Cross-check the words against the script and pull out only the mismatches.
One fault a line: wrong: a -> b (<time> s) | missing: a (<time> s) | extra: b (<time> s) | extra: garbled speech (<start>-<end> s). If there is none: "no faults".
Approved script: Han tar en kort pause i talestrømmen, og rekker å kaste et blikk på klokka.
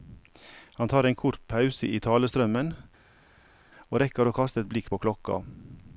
no faults